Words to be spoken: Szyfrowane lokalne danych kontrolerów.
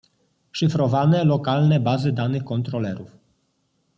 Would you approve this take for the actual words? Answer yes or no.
no